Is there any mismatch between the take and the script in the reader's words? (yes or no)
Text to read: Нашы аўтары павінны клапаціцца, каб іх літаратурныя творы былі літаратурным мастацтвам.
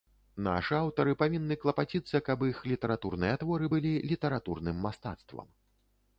no